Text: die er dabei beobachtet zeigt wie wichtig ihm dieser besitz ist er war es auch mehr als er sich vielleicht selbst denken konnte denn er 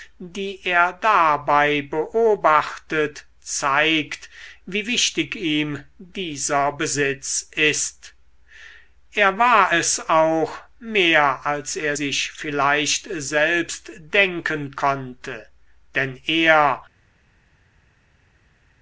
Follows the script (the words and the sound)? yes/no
yes